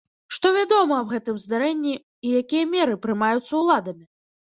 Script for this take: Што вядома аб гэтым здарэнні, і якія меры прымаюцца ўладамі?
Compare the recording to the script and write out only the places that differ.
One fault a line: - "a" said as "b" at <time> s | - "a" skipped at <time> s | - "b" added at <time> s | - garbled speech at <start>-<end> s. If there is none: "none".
none